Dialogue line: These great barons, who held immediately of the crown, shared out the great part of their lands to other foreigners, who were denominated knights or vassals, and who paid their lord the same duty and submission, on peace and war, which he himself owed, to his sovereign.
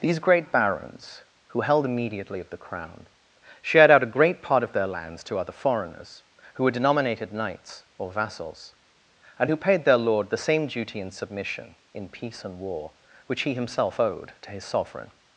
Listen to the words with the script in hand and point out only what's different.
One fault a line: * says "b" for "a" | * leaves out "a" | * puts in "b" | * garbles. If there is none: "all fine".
* says "a" for "the"
* says "in" for "on"